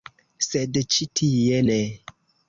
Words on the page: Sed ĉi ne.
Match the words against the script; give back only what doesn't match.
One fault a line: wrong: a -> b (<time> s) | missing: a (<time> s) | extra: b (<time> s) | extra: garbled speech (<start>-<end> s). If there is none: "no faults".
extra: tie (1.2 s)